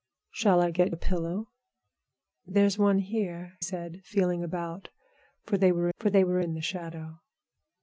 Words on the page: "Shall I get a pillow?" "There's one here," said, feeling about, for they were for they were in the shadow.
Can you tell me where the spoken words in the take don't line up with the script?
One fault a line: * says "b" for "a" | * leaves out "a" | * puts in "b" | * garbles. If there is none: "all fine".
all fine